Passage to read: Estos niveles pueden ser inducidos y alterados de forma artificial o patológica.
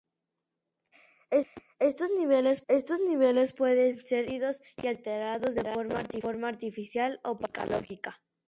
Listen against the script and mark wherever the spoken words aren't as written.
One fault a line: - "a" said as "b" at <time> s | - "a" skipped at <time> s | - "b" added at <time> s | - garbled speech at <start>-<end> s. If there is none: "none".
- "estos niveles" added at 2.7 s